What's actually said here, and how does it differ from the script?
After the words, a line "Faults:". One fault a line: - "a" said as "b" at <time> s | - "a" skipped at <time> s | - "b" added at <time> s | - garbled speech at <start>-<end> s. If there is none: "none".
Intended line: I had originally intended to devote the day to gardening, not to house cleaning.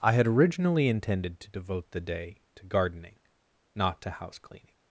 I had originally intended to devote the day to gardening, not to house cleaning.
Faults:
none